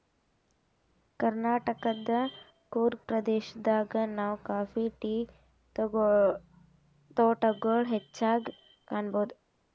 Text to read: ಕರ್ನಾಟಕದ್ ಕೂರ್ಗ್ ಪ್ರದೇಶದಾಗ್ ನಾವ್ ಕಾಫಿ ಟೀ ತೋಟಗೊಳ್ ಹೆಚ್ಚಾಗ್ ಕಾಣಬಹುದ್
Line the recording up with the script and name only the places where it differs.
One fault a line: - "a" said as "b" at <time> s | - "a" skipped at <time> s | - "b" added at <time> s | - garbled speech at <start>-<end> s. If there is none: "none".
none